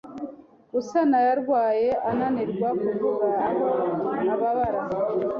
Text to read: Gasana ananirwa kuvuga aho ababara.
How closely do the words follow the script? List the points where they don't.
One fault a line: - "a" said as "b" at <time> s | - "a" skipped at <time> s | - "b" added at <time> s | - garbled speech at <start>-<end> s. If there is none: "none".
- "yarwaye" added at 1.3 s